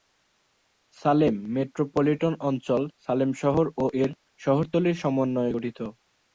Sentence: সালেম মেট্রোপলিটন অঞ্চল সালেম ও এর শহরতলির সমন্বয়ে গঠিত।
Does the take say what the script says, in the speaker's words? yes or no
no